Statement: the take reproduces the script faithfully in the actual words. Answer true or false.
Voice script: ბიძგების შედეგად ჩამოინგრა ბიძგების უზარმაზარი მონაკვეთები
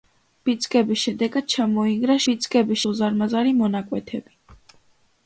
true